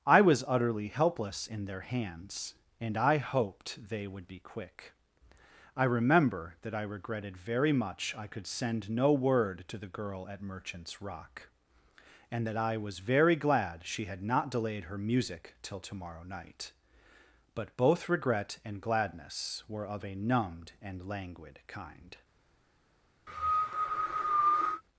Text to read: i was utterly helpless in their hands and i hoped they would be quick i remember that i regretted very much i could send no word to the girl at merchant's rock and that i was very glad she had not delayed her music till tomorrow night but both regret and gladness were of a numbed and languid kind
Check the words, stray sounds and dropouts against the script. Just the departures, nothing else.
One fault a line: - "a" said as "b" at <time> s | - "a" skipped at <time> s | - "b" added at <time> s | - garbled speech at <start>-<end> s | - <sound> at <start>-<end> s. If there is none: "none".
- cough at 23.3-24.8 s